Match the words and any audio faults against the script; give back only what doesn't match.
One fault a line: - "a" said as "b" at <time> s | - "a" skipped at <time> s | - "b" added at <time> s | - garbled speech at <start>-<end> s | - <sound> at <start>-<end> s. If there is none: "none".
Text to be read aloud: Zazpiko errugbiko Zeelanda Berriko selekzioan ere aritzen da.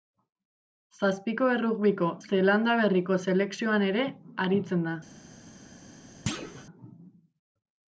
- thud at 6.3-6.7 s